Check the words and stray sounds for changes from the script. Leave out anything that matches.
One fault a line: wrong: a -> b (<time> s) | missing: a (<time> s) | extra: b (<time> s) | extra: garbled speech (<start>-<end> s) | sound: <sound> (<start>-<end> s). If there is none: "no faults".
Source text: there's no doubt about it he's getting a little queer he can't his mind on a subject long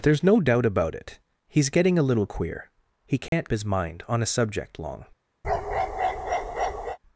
sound: dropout (3.3-3.3 s)
sound: bark (5.4-7.0 s)